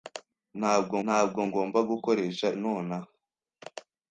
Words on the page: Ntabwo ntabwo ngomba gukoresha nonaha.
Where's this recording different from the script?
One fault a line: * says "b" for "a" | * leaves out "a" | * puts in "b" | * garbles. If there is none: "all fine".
all fine